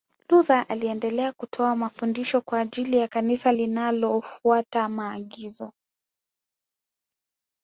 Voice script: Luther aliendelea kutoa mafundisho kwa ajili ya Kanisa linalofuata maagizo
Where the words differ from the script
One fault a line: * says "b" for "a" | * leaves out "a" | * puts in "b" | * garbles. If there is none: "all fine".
all fine